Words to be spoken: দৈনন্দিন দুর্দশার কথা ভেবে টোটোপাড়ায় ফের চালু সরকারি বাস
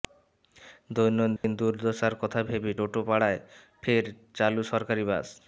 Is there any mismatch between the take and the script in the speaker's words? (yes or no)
no